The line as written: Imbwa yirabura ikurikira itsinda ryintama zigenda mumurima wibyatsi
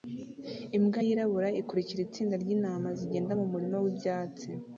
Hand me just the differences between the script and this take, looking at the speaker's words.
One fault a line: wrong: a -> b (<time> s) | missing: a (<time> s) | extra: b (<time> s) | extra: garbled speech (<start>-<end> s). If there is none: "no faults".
no faults